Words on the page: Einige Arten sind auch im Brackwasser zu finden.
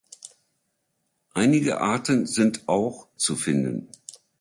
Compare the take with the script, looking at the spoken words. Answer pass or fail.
fail